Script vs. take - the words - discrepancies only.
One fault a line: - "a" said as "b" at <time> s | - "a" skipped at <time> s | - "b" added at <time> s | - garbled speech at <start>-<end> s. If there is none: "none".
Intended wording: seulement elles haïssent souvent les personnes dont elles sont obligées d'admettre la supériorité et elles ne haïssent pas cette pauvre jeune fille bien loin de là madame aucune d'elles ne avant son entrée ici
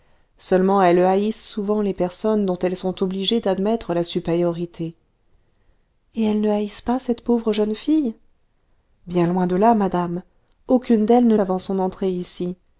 none